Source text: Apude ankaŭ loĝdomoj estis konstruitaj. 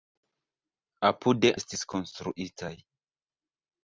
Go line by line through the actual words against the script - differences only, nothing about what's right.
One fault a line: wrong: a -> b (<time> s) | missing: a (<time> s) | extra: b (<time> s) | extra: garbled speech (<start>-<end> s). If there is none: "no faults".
missing: ankaŭ loĝdomoj (1.5 s)